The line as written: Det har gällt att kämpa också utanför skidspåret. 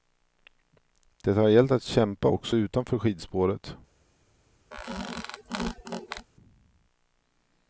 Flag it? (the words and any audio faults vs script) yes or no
yes